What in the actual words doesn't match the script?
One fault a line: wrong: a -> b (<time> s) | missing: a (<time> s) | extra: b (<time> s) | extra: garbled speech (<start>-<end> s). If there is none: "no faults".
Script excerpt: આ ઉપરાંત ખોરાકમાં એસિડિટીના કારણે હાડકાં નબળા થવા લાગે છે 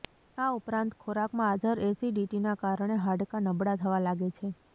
extra: હાજર (1.5 s)